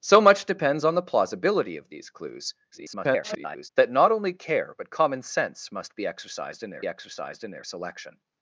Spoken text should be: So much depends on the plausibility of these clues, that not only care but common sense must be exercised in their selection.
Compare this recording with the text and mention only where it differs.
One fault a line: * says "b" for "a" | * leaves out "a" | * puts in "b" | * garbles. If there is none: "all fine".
* garbles
* puts in "exercised in their"